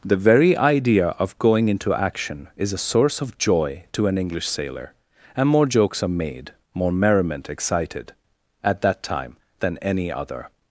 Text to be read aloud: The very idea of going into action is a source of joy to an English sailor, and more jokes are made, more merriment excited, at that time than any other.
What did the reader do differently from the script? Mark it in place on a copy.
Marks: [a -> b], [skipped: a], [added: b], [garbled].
The very idea of going into action is a source of joy to an English sailor, and more jokes are made, more merriment excited, at that time than any other.